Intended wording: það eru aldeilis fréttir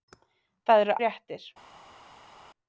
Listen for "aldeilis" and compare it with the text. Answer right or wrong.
wrong